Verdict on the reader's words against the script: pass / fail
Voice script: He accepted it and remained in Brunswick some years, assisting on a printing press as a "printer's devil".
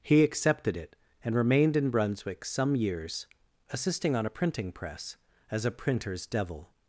pass